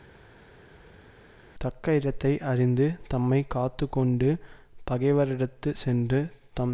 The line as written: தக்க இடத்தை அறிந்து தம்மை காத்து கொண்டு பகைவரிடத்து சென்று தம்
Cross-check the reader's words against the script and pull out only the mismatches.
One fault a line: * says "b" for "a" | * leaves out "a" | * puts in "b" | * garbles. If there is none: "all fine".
all fine